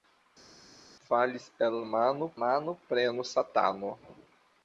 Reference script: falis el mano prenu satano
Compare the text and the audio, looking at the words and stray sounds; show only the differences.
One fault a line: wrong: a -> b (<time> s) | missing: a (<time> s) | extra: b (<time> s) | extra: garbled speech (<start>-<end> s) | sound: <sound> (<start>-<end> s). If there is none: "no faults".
extra: mano (2.4 s)